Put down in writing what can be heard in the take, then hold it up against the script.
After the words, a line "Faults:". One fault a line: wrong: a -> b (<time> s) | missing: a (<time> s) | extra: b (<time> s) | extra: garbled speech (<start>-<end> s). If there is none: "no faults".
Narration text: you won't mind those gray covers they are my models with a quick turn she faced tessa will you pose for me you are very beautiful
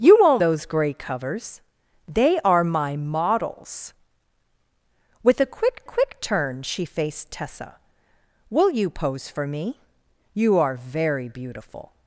you won't those gray covers they are my models with a quick quick turn she faced tessa will you pose for me you are very beautiful
Faults:
missing: mind (0.4 s)
extra: quick (5.8 s)